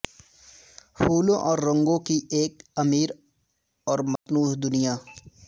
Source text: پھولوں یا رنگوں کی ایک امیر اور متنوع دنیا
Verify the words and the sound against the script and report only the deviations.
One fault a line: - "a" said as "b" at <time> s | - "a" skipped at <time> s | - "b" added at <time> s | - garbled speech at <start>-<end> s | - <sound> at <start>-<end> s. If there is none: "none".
- "یا" said as "اور" at 1.4 s
- dropout at 4.2-4.3 s